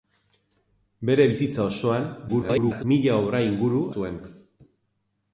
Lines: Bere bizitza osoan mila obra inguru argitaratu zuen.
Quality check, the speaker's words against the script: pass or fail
fail